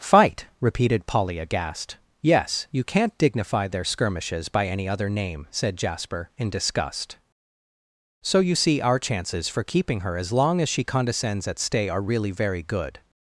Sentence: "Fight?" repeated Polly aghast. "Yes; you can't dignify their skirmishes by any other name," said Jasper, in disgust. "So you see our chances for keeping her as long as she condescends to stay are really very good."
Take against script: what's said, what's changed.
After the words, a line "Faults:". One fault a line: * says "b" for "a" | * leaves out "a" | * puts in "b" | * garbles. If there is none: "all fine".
"Fight?" repeated Polly aghast. "Yes; you can't dignify their skirmishes by any other name," said Jasper, in disgust. "So you see our chances for keeping her as long as she condescends at stay are really very good."
Faults:
* says "at" for "to"